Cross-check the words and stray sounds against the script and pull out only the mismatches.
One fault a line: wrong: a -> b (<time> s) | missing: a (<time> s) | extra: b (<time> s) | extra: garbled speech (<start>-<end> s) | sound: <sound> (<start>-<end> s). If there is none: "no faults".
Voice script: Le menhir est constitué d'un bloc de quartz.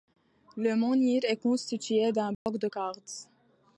sound: dropout (2.3-2.5 s)